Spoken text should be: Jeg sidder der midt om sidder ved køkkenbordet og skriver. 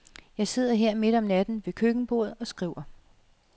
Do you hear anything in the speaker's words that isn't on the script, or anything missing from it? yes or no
yes